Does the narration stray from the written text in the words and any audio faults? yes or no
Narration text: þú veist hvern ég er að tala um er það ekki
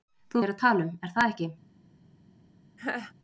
yes